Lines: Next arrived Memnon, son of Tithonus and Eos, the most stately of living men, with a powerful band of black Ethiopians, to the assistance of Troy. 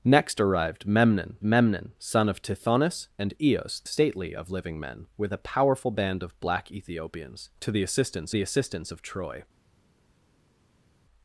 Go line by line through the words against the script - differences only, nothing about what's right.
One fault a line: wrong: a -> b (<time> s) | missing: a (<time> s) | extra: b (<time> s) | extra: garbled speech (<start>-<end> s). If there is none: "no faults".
extra: Memnon (1.4 s)
missing: most (3.9 s)
extra: the assistance (8.3 s)